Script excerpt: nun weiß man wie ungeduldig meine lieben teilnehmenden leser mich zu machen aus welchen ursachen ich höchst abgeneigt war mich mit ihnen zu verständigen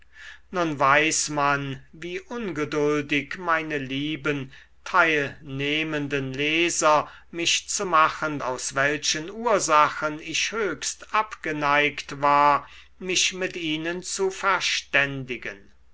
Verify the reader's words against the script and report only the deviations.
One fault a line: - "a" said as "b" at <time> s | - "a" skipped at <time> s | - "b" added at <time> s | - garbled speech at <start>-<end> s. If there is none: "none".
none